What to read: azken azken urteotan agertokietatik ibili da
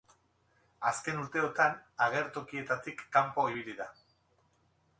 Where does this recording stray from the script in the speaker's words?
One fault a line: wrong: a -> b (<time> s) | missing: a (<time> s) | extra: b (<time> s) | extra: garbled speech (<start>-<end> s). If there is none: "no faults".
missing: azken (1.2 s)
extra: kanpo (3.2 s)